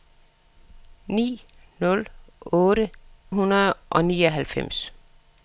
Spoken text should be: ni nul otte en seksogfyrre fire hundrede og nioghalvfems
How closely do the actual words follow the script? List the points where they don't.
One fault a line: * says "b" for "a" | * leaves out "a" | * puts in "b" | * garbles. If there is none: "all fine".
* leaves out "en seksogfyrre fire"